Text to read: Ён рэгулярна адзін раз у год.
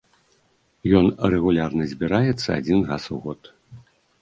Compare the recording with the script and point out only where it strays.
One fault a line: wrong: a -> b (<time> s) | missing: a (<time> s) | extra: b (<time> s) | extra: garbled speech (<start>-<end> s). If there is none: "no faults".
extra: збіраецца (1.9 s)